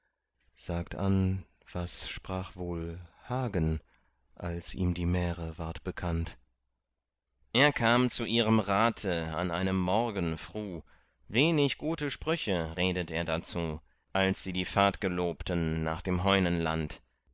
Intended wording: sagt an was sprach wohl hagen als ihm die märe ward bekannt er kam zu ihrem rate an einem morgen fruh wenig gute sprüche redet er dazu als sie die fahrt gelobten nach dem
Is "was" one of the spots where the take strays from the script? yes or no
no